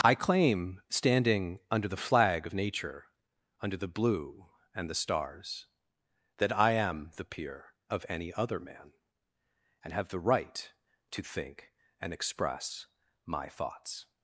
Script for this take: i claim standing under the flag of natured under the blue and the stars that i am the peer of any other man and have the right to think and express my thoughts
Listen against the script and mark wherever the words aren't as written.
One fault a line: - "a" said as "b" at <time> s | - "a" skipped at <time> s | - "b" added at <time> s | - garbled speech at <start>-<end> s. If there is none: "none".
- "natured" said as "nature" at 2.5 s